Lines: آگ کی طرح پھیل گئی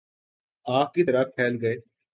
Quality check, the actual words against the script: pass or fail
pass